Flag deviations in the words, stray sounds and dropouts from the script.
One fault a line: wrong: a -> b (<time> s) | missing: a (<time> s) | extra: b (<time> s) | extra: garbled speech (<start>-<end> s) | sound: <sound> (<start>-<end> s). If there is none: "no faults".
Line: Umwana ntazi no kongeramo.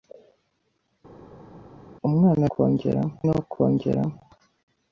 wrong: ntazi -> kongeramo (2.5 s)